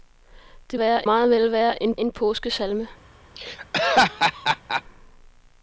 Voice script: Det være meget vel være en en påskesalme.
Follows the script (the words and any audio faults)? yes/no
no